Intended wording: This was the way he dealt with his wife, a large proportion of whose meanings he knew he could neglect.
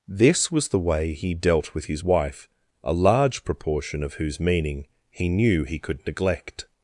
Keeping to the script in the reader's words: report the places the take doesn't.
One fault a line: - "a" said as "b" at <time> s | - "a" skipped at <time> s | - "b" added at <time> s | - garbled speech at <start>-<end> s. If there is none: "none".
- "meanings" said as "meaning" at 4.4 s